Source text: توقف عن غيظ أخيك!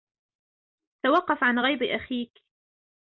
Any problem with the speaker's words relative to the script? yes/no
no